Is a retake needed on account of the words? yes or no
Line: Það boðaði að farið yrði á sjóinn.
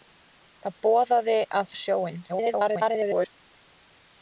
yes